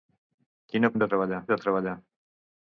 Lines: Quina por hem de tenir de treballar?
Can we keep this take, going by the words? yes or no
no